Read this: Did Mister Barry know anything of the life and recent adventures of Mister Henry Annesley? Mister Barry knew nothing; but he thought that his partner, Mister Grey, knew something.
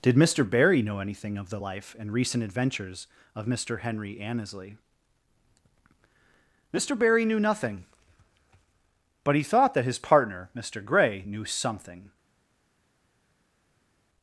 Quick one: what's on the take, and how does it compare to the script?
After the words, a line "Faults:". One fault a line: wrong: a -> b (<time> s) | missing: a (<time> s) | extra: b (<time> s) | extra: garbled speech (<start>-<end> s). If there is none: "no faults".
Did Mister Barry know anything of the life and recent adventures of Mister Henry Annesley? Mister Barry knew nothing; but he thought that his partner, Mister Grey, knew something.
Faults:
no faults